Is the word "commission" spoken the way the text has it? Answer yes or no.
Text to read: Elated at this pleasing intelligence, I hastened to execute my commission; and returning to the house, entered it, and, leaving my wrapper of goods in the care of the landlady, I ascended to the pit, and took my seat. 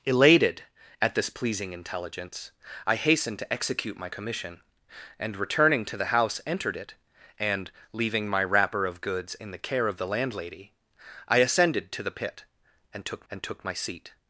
yes